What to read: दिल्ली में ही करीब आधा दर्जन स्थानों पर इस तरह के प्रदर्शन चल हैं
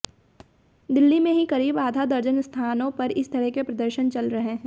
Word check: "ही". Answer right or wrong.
right